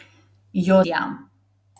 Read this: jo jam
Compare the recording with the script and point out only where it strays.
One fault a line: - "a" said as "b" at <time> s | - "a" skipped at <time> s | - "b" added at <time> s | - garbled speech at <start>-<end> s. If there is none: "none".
none